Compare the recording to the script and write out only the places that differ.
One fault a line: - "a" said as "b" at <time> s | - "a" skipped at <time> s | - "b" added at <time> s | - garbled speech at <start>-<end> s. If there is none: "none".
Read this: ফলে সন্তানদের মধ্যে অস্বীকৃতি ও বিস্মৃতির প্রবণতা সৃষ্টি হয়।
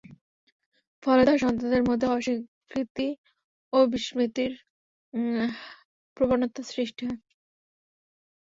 - "তার" added at 1.2 s